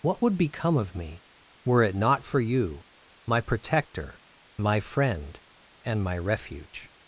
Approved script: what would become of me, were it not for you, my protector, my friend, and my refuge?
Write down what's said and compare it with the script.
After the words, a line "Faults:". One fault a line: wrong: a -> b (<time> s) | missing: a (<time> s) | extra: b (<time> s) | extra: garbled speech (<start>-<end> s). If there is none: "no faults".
what would become of me, were it not for you, my protector, my friend, and my refuge?
Faults:
no faults